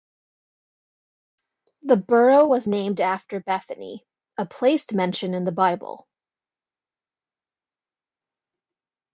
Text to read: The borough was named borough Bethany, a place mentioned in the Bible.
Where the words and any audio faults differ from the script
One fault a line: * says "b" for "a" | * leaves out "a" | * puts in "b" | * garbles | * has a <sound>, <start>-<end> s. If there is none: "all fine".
* says "after" for "borough"